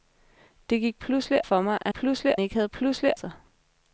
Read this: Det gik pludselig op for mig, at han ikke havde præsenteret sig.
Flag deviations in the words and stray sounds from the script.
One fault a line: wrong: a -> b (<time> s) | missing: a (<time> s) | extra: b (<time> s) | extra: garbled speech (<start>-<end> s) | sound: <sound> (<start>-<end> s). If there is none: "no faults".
missing: op (1.5 s)
wrong: han -> pludselig (1.9 s)
wrong: præsenteret -> pludselig (2.7 s)